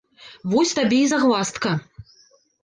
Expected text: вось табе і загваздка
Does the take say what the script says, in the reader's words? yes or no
yes